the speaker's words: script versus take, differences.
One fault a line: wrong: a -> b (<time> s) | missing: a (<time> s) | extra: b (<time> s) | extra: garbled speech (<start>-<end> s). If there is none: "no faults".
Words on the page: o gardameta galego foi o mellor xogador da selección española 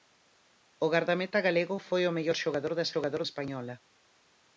wrong: selección -> xogador (2.9 s)